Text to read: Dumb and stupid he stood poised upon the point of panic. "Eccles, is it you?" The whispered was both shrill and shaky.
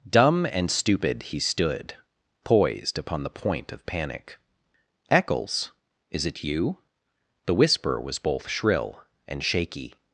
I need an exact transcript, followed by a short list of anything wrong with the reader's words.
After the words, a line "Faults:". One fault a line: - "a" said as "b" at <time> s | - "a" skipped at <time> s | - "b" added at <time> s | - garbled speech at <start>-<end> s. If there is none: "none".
Dumb and stupid he stood poised upon the point of panic. "Eccles, is it you?" The whisper was both shrill and shaky.
Faults:
- "whispered" said as "whisper" at 7.5 s